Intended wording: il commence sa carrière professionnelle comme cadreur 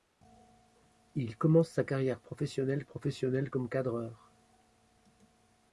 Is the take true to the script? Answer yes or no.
no